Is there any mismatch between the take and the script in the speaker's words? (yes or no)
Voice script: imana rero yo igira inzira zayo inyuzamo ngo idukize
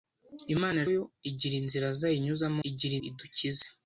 yes